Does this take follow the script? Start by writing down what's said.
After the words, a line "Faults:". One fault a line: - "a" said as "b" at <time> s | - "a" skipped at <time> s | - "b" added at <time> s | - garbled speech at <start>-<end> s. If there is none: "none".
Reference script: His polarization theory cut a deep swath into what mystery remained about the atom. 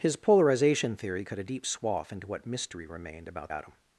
His polarization theory cut a deep swath into what mystery remained about atom.
Faults:
- "the" skipped at 3.5 s